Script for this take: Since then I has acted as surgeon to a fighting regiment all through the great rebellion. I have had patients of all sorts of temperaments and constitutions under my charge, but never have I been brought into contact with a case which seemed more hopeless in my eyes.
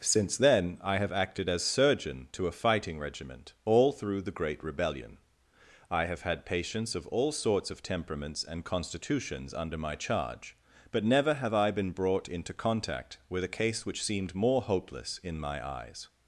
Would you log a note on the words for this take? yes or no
yes